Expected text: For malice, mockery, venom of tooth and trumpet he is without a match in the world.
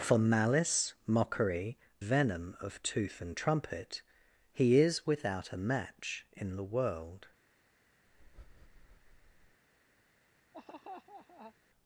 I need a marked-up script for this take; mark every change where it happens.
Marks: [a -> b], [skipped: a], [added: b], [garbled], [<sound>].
For malice, mockery, venom of tooth and trumpet he is without a match in the world. [breath] [laugh]